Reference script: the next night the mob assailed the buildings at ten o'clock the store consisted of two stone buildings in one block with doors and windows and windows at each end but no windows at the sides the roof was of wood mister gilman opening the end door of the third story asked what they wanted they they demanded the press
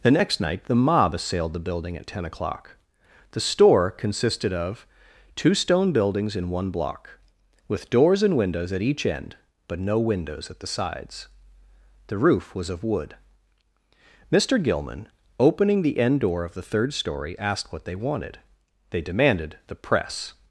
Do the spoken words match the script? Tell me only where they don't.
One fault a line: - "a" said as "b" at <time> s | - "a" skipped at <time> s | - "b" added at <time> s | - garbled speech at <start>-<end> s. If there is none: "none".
- "buildings" said as "building" at 1.6 s
- "and windows" skipped at 8.7 s
- "they" skipped at 19.0 s